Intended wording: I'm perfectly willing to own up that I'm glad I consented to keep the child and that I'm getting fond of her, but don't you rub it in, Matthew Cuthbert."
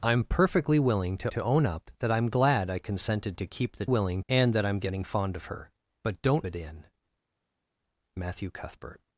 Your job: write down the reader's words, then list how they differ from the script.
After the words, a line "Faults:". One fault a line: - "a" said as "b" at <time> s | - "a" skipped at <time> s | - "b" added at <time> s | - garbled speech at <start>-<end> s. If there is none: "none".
I'm perfectly willing to to own up that I'm glad I consented to keep the willing and that I'm getting fond of her, but don't it in, Matthew Cuthbert."
Faults:
- "to" added at 1.3 s
- "child" said as "willing" at 3.8 s
- "you rub" skipped at 6.5 s